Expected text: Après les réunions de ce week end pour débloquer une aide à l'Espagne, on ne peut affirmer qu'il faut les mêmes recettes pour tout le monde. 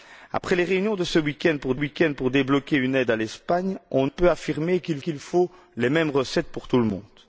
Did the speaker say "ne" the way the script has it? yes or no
no